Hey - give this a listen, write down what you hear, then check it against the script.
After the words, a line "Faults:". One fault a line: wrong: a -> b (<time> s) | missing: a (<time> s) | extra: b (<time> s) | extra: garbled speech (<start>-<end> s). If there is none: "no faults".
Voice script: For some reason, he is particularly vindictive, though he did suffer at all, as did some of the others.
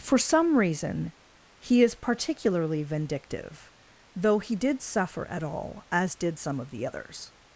For some reason, he is particularly vindictive, though he did suffer at all, as did some of the others.
Faults:
no faults